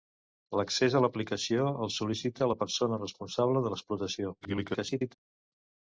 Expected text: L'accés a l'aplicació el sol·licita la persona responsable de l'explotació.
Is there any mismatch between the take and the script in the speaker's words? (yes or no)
yes